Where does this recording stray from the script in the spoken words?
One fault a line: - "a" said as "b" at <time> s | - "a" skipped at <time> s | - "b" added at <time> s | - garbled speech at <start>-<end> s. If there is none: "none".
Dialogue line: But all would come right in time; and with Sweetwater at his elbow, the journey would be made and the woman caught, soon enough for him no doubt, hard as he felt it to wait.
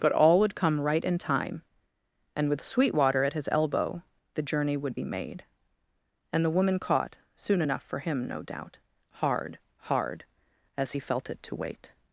- "hard" added at 9.9 s